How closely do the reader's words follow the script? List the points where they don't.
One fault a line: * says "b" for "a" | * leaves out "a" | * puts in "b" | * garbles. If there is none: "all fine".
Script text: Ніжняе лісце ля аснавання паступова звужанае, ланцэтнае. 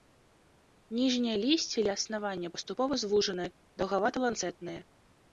* puts in "даўгавата"